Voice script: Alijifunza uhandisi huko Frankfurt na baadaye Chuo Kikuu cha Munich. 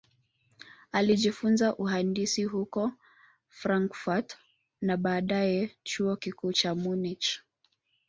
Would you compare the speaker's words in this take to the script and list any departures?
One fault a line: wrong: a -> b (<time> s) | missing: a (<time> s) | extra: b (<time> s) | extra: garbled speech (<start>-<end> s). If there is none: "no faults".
no faults